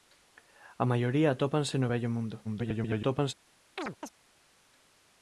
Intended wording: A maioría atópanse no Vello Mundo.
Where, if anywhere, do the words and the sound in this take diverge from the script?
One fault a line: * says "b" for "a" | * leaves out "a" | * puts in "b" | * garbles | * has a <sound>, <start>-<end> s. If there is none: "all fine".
* garbles
* has a chirp, 3.8-4.1 s